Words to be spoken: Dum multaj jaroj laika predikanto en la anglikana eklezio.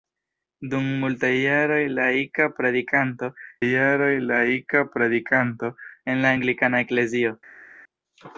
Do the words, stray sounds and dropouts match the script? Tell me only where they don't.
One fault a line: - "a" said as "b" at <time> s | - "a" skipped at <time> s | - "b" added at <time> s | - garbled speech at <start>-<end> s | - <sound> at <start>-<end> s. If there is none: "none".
- "jaroj laika predikanto" added at 3.6 s